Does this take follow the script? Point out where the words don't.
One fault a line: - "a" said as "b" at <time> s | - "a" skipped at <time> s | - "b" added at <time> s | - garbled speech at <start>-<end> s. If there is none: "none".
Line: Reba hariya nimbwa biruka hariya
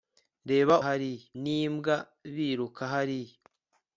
none